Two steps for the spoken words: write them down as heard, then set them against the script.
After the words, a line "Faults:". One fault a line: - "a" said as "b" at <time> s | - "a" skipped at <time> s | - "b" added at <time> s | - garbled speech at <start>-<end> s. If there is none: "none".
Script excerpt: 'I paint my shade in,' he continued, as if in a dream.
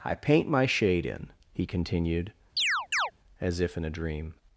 'I paint my shade in,' he continued, as if in a dream.
Faults:
none